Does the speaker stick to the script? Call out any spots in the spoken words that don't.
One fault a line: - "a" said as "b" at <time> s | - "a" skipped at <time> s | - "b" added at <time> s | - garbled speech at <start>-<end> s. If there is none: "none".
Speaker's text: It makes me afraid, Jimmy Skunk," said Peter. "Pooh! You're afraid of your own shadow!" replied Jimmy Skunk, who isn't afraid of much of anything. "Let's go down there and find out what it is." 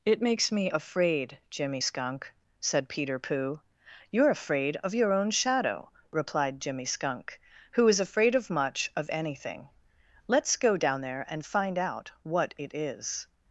- "isn't" said as "is" at 7.9 s